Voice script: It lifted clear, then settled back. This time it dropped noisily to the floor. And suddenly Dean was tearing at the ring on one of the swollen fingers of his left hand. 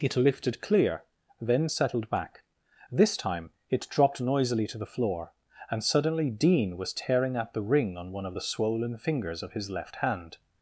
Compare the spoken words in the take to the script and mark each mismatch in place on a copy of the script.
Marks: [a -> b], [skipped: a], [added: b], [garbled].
It lifted clear, then settled back. This time it dropped noisily to the floor. And suddenly Dean was tearing at the ring on one of the swollen fingers of his left hand.